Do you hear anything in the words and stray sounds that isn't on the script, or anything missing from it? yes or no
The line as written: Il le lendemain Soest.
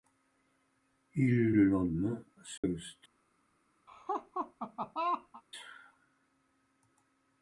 yes